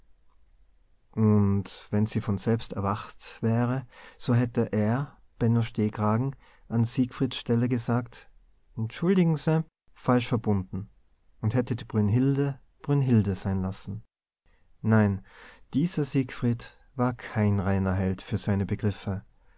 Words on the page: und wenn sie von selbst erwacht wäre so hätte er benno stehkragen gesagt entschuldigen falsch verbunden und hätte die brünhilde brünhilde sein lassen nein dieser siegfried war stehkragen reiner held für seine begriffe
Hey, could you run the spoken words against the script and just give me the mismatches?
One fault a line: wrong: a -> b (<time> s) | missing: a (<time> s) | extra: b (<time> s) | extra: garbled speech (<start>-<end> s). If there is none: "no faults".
extra: an siegfrieds stelle (6.7 s)
extra: se (9.4 s)
wrong: stehkragen -> kein (17.1 s)